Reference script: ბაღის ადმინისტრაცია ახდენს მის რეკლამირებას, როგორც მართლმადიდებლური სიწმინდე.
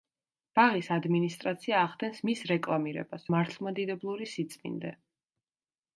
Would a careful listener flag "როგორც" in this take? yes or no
yes